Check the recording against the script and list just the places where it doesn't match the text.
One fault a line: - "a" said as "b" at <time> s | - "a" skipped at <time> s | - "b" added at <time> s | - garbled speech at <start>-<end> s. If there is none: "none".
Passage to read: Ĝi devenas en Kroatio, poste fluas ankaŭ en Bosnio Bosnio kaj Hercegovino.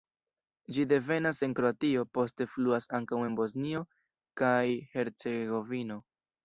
- "Bosnio" skipped at 3.9 s